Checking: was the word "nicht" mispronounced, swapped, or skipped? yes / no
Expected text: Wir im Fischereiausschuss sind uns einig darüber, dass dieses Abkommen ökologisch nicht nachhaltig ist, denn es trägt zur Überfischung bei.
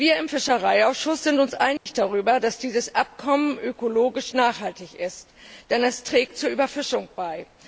yes